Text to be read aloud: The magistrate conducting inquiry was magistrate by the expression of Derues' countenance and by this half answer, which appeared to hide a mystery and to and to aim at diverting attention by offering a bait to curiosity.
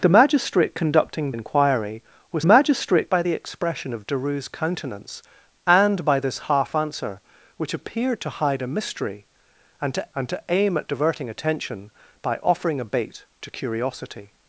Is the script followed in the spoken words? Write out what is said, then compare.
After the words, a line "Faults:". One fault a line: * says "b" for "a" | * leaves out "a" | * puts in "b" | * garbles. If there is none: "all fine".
The magistrate conducting inquiry was magistrate by the expression of Derues' countenance and by this half answer, which appeared to hide a mystery and to and to aim at diverting attention by offering a bait to curiosity.
Faults:
all fine